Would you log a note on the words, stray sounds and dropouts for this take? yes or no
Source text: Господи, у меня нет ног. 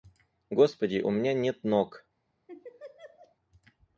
yes